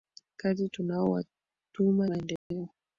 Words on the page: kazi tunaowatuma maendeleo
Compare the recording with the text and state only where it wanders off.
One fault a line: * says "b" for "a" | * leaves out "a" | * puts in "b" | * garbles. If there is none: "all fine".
all fine